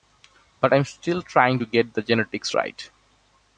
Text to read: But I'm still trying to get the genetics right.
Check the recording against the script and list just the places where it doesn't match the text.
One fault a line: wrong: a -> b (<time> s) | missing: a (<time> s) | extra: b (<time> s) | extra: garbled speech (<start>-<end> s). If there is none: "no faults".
no faults